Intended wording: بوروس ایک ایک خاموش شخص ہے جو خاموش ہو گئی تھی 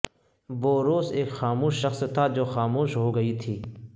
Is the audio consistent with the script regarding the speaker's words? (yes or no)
no